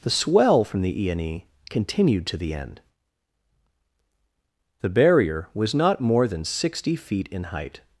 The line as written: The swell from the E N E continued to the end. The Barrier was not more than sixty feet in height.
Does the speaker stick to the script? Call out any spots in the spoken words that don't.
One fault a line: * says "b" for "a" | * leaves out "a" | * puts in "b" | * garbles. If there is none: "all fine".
all fine